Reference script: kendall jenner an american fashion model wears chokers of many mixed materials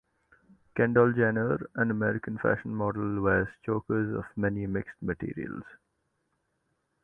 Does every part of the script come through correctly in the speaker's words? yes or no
yes